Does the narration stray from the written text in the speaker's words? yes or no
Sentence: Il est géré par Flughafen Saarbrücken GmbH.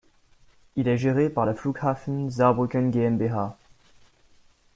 yes